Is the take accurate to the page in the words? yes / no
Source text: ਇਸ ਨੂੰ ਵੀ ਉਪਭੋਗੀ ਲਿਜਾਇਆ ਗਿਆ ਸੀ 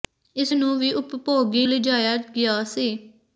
yes